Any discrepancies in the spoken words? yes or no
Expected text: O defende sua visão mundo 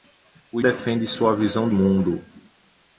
no